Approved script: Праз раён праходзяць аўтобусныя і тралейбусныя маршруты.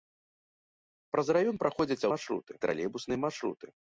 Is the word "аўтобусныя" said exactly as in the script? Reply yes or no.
no